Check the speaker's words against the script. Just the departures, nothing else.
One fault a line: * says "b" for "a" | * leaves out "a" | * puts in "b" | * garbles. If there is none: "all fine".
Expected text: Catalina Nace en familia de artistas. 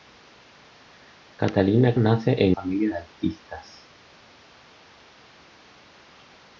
all fine